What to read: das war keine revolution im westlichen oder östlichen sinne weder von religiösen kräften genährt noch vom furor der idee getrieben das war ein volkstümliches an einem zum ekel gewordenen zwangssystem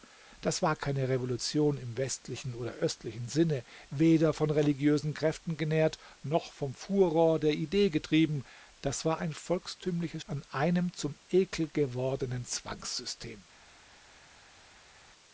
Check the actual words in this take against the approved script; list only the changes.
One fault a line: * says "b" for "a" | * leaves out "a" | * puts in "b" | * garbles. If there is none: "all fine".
all fine